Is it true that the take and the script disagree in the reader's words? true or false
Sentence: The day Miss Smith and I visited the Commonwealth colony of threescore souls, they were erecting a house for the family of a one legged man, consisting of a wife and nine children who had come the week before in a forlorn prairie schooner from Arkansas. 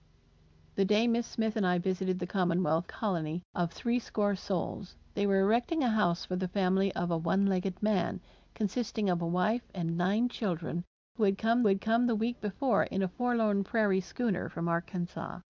true